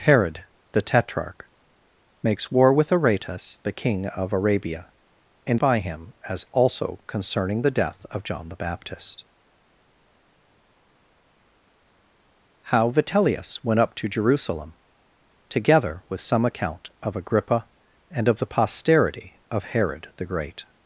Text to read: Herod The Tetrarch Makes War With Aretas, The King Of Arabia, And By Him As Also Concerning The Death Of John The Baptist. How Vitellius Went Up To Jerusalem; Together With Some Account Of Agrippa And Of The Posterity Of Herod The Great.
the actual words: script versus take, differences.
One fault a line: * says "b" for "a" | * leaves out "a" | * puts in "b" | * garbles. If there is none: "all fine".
all fine